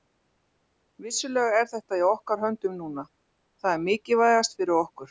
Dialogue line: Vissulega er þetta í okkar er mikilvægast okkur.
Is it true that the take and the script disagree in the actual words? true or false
true